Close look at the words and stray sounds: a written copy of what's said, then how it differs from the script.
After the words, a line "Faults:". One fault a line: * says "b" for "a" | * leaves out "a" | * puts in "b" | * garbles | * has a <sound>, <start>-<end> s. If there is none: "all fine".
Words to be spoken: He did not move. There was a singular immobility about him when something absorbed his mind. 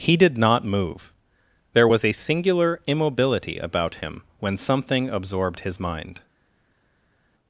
He did not move. There was a singular immobility about him when something absorbed his mind.
Faults:
all fine